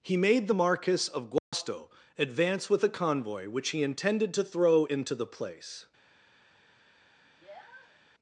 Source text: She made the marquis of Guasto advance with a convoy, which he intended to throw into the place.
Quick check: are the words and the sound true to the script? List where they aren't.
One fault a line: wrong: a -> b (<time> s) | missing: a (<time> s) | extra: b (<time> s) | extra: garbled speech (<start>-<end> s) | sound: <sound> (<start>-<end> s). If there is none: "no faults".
wrong: She -> He (0.0 s)
sound: dropout (1.4-1.5 s)
sound: sniff (7.2-8.0 s)